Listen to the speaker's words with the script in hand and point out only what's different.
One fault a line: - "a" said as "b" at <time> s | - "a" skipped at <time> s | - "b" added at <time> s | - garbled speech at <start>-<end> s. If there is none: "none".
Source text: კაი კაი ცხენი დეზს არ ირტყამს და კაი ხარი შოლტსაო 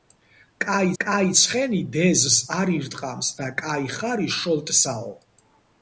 none